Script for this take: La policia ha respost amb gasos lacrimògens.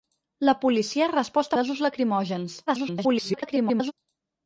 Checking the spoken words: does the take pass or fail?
fail